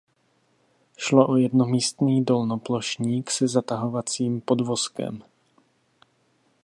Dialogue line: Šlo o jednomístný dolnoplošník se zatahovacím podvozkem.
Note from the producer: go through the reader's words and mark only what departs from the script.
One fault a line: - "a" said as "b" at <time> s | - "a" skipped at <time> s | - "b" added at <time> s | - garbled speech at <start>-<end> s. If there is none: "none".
none